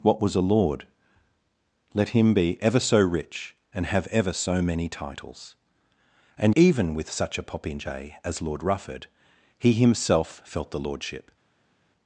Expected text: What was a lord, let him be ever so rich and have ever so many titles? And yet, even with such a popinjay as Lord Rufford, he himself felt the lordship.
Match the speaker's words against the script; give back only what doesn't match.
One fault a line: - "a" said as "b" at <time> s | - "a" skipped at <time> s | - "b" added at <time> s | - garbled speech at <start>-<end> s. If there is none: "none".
- "yet" skipped at 6.5 s